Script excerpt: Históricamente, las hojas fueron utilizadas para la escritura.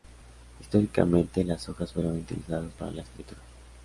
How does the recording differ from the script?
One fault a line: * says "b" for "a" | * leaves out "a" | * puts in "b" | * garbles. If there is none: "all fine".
all fine